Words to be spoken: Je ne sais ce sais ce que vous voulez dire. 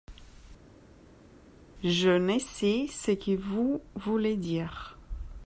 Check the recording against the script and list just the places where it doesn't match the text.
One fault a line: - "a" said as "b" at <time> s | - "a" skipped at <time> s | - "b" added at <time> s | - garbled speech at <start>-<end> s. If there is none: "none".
- "sais ce" skipped at 3.1 s